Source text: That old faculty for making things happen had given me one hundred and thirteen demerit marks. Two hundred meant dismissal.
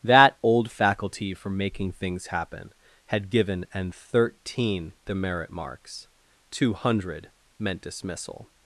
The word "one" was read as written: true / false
false